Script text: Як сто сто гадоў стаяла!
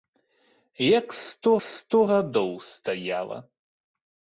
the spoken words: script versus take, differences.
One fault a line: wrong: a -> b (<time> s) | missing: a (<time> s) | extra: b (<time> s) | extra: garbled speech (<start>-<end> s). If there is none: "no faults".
no faults